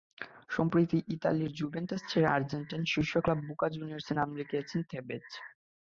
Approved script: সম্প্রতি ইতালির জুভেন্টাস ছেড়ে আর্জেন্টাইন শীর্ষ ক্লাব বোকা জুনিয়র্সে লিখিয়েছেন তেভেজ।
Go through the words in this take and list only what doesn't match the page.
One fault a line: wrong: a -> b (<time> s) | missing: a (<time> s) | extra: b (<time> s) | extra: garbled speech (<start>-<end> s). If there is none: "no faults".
extra: নাম (4.1 s)